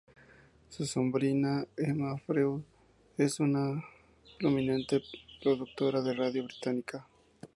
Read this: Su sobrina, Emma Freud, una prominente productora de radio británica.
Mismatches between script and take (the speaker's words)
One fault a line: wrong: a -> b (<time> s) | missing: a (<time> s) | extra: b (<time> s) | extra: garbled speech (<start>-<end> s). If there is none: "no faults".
extra: es (3.2 s)